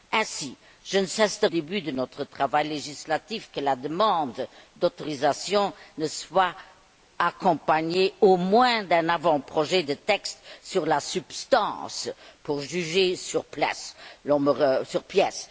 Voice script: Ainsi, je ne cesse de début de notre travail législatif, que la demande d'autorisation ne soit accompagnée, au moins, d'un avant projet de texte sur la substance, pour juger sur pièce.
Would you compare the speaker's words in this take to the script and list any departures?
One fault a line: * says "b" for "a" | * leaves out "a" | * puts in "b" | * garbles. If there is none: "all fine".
all fine